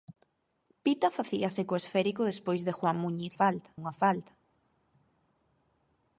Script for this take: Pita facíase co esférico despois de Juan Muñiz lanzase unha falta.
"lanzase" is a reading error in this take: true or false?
true